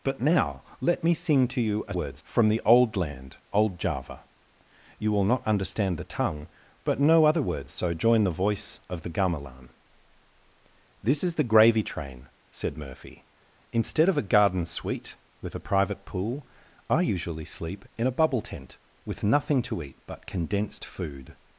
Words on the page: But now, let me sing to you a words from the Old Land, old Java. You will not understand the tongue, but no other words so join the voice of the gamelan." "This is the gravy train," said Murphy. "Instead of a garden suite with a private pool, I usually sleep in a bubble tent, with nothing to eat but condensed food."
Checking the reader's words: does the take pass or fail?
pass